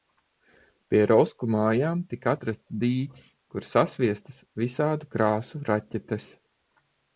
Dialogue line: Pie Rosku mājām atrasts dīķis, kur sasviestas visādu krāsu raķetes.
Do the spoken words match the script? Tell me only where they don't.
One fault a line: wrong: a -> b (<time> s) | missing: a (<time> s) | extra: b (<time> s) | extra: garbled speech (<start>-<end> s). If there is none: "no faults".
extra: tika (2.1 s)